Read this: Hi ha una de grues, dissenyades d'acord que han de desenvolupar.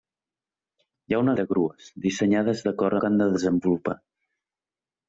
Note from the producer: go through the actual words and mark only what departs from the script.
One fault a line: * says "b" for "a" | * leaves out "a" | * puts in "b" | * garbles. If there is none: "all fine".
all fine